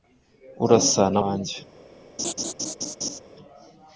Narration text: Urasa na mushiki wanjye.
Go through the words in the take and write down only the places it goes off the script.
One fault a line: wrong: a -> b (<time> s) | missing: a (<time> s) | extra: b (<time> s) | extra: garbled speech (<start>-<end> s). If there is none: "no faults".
missing: mushiki (1.2 s)